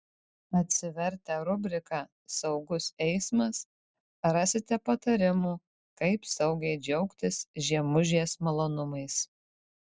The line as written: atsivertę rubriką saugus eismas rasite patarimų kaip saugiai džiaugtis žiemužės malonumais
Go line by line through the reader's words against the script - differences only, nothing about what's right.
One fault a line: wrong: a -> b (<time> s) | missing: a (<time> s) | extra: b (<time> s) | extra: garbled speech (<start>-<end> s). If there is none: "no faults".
no faults